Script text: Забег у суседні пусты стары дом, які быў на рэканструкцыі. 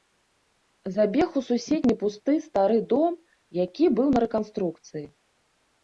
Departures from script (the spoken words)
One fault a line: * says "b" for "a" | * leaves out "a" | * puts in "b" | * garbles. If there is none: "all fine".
all fine